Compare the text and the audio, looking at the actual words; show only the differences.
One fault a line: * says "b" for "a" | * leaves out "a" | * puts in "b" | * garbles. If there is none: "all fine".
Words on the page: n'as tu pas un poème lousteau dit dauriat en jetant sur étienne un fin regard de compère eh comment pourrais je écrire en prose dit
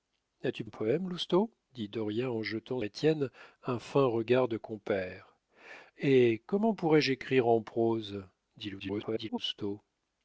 * leaves out "pas"
* leaves out "sur"
* garbles